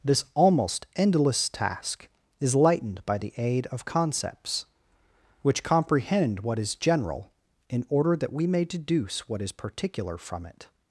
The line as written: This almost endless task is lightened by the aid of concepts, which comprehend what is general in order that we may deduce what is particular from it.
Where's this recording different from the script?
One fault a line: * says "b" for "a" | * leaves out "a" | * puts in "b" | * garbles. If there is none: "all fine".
all fine